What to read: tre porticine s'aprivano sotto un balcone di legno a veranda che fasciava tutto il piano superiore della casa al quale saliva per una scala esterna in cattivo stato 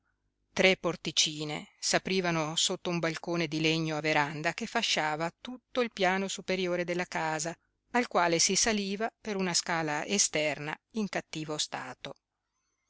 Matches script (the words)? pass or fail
fail